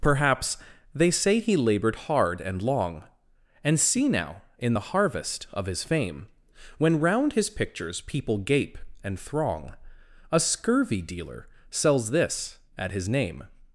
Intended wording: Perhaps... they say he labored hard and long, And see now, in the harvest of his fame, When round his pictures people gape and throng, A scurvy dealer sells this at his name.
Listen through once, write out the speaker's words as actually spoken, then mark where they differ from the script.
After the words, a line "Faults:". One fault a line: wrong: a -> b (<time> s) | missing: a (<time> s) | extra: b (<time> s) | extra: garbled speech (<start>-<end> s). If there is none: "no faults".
Perhaps... they say he labored hard and long, And see now, in the harvest of his fame, When round his pictures people gape and throng, A scurvy dealer sells this at his name.
Faults:
no faults